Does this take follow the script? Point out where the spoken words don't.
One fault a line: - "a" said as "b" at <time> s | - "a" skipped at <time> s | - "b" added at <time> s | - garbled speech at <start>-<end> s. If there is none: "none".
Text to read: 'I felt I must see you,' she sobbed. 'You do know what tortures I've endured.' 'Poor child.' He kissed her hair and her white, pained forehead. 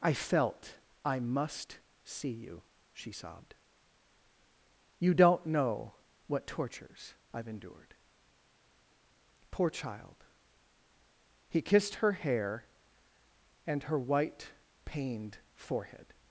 - "do" said as "don't" at 5.1 s